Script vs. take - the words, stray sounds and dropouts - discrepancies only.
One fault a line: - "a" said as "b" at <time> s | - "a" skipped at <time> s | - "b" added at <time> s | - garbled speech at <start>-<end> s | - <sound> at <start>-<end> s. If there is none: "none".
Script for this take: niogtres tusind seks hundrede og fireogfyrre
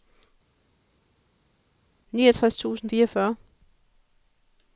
- "seks hundrede og" skipped at 2.9 s